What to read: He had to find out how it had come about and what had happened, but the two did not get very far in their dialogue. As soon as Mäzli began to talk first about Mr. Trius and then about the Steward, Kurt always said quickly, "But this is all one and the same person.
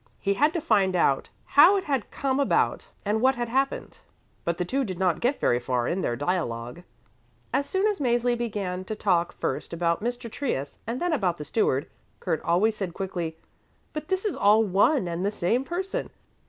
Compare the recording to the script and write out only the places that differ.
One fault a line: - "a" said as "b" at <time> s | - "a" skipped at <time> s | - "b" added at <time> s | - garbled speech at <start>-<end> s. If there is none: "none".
none